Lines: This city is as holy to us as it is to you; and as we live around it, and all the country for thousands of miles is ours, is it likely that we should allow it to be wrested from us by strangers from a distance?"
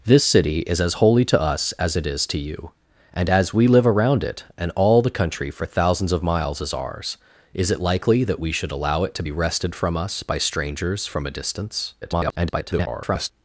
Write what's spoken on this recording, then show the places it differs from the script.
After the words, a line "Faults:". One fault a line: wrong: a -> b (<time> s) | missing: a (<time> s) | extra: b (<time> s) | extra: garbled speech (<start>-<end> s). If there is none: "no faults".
This city is as holy to us as it is to you; and as we live around it, and all the country for thousands of miles is ours, is it likely that we should allow it to be wrested from us by strangers from a distance?" [garbled]
Faults:
extra: garbled speech (12.0-13.3 s)